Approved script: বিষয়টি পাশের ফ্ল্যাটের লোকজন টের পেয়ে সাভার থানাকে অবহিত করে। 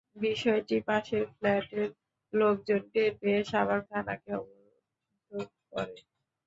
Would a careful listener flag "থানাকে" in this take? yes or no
no